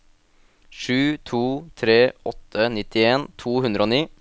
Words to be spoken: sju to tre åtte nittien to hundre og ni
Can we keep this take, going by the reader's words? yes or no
yes